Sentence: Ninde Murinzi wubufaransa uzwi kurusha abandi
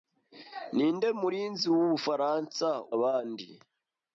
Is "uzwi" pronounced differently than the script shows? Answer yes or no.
yes